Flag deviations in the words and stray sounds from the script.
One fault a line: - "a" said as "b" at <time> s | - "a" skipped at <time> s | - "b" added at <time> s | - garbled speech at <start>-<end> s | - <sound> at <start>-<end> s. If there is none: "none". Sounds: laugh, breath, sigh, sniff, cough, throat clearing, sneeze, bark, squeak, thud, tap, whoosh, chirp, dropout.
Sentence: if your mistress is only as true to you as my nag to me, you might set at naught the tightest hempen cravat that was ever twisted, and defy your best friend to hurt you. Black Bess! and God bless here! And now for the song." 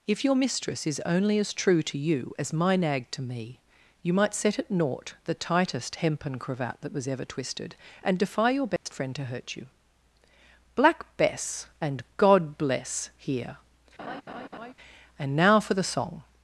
- dropout at 8.8-8.9 s
- laugh at 14.0-14.7 s